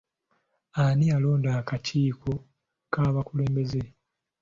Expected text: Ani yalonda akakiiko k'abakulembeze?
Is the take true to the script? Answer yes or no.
yes